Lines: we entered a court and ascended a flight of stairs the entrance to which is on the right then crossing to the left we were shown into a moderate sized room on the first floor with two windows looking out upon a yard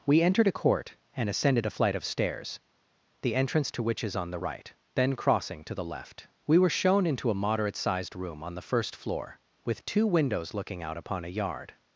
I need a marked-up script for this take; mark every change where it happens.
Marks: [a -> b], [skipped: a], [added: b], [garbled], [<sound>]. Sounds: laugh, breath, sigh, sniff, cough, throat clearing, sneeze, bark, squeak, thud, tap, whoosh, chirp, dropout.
we entered a court and ascended a flight of stairs the entrance to which is on the right then crossing to the left we were shown into a moderate sized room on the first floor with two windows looking out upon a yard